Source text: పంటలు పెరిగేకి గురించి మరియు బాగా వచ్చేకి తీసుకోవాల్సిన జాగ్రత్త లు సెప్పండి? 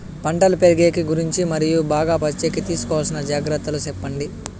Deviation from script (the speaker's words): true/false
false